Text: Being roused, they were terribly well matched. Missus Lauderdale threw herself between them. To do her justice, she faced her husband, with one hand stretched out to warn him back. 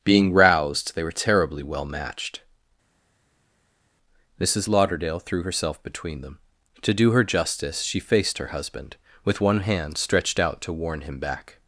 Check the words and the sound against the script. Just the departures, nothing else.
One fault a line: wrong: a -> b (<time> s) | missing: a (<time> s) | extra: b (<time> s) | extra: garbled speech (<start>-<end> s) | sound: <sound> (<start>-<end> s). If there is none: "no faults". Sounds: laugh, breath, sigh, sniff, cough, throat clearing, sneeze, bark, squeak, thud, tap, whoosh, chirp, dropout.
no faults